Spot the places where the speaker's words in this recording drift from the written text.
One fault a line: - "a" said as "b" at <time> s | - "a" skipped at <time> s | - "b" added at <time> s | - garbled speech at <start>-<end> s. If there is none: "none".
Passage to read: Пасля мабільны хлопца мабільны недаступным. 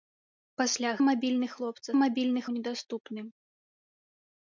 none